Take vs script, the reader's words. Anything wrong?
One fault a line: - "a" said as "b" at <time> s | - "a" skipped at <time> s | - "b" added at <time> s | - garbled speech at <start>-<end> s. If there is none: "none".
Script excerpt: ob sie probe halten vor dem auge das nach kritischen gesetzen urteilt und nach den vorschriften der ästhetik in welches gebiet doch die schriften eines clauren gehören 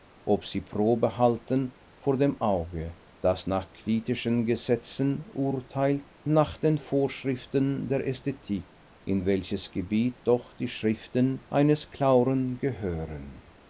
- "und" skipped at 6.0 s